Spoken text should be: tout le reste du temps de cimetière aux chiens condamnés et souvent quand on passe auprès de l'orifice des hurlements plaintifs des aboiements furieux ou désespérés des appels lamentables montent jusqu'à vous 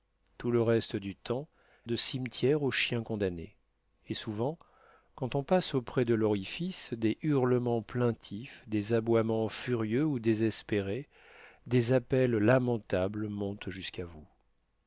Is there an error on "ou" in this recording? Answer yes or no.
no